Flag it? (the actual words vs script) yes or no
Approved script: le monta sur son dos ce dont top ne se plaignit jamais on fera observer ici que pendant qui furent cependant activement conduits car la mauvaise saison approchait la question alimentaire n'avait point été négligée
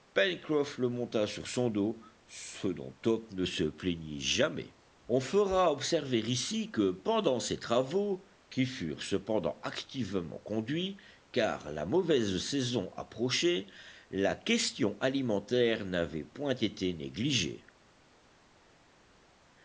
yes